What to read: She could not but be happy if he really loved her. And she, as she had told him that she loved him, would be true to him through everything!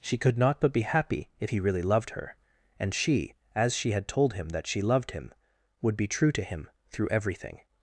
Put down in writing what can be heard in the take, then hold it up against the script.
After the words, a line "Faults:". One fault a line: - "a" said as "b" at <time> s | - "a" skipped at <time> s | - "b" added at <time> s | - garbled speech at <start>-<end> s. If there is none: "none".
She could not but be happy if he really loved her. And she, as she had told him that she loved him, would be true to him through everything!
Faults:
none